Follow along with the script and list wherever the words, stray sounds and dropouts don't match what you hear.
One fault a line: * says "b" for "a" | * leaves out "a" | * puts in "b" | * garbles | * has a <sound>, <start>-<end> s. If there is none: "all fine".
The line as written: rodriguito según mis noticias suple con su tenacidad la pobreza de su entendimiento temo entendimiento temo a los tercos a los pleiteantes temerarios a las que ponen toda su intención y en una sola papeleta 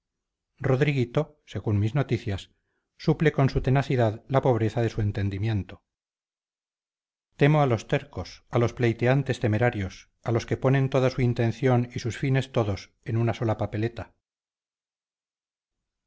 * leaves out "entendimiento temo"
* says "los" for "las"
* puts in "sus fines todos"